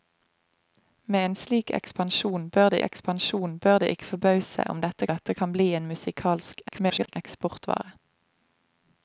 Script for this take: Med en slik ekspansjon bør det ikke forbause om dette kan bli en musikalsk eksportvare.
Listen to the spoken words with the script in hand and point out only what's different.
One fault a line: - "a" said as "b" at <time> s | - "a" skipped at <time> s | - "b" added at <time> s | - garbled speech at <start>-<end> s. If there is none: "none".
- "ekspansjon bør det" added at 2.9 s
- "dette" added at 5.1 s
- garbled speech at 6.7-7.2 s